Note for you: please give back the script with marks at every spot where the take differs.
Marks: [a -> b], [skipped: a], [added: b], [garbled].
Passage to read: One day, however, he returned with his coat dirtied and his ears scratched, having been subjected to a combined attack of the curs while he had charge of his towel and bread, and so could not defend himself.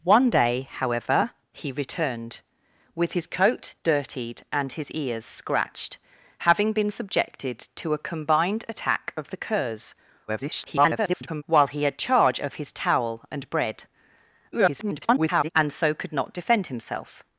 One day, however, he returned with his coat dirtied and his ears scratched, having been subjected to a combined attack of the curs [garbled] while he had charge of his towel and bread, [garbled] and so could not defend himself.